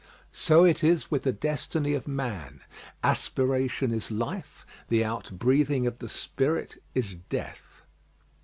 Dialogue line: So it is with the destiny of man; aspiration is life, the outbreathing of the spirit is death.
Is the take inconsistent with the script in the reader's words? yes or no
no